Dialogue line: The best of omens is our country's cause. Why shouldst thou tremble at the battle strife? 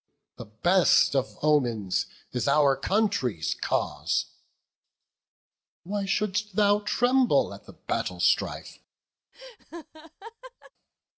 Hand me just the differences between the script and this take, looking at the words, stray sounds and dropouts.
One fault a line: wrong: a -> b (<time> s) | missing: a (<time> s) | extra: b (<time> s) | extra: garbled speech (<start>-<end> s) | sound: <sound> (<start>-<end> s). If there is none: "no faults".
sound: laugh (9.3-10.7 s)